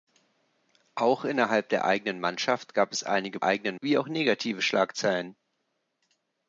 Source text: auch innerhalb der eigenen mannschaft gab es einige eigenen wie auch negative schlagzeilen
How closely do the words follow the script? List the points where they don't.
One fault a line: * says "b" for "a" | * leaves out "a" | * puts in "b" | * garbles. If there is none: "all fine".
all fine